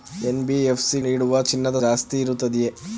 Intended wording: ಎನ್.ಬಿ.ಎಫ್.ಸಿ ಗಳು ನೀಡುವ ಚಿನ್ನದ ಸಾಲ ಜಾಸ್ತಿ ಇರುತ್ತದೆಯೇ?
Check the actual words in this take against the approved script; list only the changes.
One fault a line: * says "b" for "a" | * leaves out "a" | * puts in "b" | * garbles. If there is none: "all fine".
* leaves out "ಗಳು"
* leaves out "ಸಾಲ"